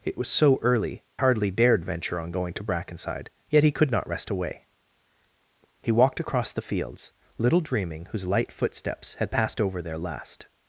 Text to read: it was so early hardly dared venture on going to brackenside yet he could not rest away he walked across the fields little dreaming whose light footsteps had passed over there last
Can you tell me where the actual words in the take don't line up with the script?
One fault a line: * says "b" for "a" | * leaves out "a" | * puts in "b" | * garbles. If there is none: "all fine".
all fine